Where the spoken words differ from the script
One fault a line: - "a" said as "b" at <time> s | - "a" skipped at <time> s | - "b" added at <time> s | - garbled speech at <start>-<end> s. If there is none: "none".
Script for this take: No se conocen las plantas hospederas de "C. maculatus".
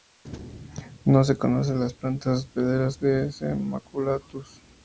none